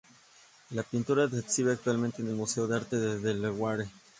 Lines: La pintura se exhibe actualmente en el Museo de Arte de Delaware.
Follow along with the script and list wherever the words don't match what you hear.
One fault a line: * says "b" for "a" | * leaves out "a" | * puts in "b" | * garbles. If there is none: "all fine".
all fine